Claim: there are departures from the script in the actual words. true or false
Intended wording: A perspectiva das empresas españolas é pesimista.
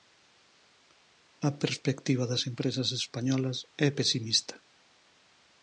false